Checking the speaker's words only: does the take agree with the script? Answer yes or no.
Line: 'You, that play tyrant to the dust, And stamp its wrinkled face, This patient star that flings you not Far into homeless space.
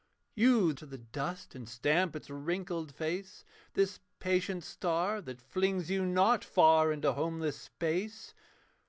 no